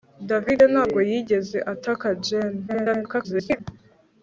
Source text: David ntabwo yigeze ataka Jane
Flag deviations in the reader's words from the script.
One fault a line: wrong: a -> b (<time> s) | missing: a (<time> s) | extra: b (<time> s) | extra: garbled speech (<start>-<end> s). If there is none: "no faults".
extra: garbled speech (2.7-3.6 s)